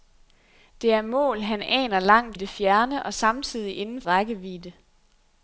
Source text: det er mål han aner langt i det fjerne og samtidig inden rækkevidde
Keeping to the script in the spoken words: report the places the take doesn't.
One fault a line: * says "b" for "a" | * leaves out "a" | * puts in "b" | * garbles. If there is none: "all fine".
all fine